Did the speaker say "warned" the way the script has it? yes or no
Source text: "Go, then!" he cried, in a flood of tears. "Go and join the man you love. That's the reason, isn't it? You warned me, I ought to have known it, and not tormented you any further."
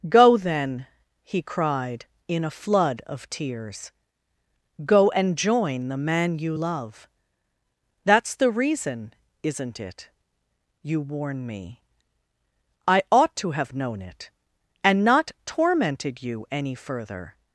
no